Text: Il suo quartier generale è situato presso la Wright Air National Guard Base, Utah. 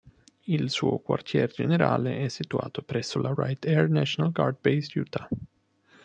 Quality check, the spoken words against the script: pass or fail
pass